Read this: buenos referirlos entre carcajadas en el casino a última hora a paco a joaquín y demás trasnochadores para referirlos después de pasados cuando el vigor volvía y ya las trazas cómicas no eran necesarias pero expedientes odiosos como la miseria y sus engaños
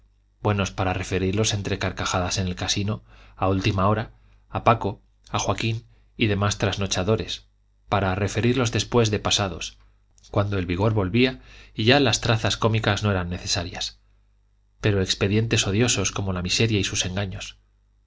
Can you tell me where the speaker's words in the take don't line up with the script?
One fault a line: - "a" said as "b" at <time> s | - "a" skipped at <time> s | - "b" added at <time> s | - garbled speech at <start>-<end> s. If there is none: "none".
- "para" added at 0.7 s